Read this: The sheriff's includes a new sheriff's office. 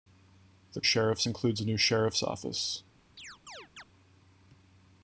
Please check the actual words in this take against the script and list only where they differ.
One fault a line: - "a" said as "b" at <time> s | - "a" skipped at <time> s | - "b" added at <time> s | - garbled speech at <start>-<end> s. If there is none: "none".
none